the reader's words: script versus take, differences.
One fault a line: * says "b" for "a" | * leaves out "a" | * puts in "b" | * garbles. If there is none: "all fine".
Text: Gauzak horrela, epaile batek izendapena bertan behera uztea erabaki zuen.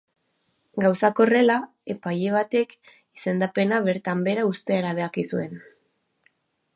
all fine